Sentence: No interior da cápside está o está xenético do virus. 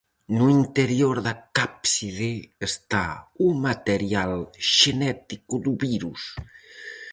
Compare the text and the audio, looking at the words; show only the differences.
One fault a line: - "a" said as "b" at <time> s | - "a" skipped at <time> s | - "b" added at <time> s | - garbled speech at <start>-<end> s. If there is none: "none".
- "está" said as "material" at 3.7 s